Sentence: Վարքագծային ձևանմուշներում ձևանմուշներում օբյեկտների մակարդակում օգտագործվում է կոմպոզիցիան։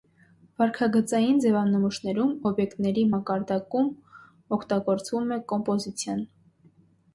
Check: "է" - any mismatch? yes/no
no